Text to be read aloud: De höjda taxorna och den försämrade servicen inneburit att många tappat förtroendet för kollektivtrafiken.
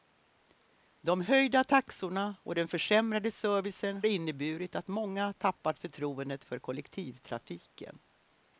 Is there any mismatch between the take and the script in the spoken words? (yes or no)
no